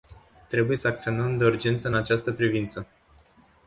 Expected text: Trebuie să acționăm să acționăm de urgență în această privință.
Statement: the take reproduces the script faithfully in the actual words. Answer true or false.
false